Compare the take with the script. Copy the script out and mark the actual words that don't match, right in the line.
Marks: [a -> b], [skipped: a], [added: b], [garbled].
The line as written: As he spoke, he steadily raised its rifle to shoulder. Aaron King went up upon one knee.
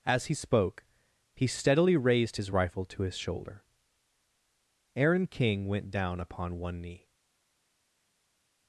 As he spoke, he steadily raised [its -> his] rifle to [added: his] shoulder. Aaron King went [up -> down] upon one knee.